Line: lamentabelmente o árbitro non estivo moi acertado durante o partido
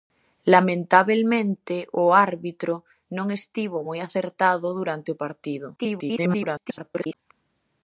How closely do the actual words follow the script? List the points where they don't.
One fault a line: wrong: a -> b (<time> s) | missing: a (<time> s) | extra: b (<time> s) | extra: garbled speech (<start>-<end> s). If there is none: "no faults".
extra: garbled speech (5.8-7.1 s)